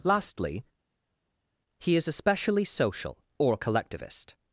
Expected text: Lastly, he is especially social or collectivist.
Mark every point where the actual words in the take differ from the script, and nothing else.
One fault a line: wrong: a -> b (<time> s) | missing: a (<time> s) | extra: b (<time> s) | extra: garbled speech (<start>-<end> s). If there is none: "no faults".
no faults